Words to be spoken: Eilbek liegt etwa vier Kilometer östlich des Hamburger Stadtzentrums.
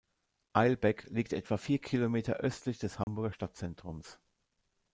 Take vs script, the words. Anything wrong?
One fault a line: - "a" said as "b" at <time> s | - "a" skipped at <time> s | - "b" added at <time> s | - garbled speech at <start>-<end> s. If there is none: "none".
none